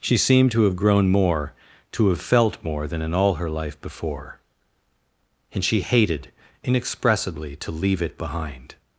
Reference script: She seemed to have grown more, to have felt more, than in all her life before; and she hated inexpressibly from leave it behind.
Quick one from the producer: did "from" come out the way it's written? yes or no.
no